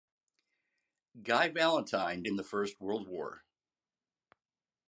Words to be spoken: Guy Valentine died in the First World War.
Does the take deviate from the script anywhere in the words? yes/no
yes